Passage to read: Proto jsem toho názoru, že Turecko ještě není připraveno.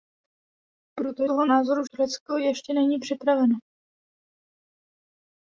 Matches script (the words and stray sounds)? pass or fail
fail